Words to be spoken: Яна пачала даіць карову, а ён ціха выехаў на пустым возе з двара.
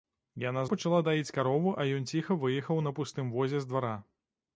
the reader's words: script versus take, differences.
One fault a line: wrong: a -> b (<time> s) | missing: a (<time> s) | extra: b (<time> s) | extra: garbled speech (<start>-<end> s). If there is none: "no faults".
no faults